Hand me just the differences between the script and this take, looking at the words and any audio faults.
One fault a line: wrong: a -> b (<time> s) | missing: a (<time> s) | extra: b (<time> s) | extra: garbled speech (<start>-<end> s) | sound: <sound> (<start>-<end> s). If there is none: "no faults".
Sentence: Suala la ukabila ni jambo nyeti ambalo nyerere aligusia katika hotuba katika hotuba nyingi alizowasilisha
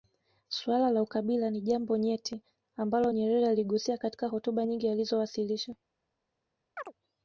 missing: katika hotuba (4.7 s)
sound: chirp (6.8-6.9 s)